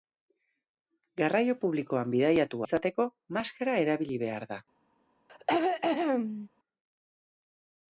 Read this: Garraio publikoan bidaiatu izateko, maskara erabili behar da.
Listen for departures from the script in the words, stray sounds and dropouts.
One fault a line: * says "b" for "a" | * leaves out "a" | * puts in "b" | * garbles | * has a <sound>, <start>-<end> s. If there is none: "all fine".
* has a throat clearing, 5.3-6.5 s